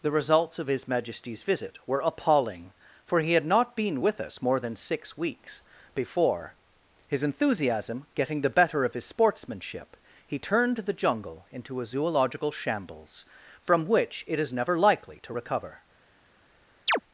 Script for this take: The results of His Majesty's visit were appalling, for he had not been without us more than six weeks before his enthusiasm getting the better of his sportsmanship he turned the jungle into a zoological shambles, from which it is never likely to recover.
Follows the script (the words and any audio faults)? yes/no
no